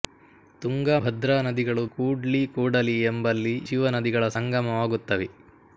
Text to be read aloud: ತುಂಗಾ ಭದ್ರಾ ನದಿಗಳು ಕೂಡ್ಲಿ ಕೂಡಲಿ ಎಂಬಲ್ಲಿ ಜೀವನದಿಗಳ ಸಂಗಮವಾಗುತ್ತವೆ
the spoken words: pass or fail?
pass